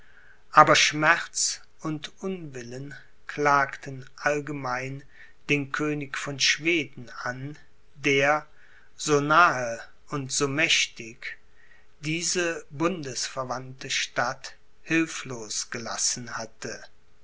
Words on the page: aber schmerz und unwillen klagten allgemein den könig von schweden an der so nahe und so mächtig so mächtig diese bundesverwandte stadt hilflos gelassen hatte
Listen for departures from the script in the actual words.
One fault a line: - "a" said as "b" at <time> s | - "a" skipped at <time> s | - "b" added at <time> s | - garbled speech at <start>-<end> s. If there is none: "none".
- "so mächtig" skipped at 11.4 s